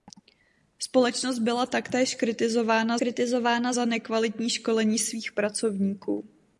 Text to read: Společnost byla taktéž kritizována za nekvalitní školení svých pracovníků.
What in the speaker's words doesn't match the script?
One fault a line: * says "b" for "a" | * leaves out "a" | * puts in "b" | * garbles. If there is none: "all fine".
* puts in "kritizována"